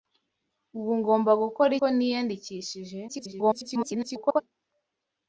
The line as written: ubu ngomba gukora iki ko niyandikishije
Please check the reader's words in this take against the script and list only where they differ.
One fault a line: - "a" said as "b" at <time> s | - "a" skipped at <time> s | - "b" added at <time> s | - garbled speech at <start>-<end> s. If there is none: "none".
- "iki" skipped at 1.7 s
- garbled speech at 3.1-4.4 s